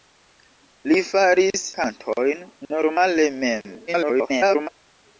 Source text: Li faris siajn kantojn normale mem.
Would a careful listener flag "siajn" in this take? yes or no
yes